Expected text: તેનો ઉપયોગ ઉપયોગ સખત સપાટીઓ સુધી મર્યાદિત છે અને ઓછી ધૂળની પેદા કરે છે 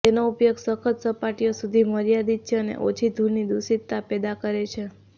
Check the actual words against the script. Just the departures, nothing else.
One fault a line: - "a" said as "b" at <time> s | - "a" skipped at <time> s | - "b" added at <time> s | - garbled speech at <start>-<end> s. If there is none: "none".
- "ઉપયોગ" skipped at 0.6 s
- "દૂષિતતા" added at 3.5 s